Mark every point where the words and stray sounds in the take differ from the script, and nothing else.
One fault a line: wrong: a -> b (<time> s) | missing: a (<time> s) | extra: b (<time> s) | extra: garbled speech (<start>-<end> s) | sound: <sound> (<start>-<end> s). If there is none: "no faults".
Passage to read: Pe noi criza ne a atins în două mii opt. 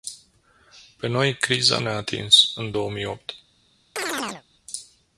sound: chirp (4.0-4.4 s)